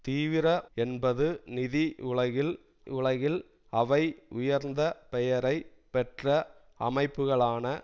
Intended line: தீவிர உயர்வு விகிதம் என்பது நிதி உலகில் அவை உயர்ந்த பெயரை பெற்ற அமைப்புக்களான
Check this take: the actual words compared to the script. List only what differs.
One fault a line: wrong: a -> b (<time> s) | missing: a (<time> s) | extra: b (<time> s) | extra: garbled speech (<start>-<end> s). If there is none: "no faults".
missing: உயர்வு விகிதம் (0.5 s)
extra: உலகில் (2.9 s)